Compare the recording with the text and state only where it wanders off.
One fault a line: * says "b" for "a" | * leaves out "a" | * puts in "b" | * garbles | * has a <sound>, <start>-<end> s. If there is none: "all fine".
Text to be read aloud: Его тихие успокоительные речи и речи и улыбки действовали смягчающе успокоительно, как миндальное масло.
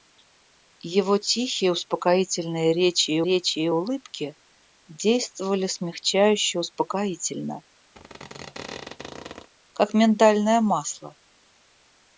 * has a squeak, 7.9-9.5 s